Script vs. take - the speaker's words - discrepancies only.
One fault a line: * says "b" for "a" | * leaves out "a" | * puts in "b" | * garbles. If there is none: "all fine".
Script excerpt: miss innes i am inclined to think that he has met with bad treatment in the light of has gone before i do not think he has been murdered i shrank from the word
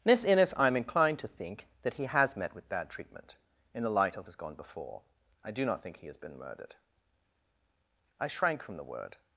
all fine